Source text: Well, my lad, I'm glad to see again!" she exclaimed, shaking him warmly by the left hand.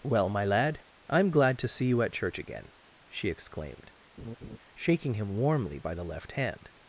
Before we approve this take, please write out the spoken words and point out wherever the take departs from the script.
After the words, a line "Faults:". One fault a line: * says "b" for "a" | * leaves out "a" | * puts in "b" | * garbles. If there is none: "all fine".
Well, my lad, I'm glad to see you at church again!" she exclaimed, shaking him warmly by the left hand.
Faults:
* puts in "you at church"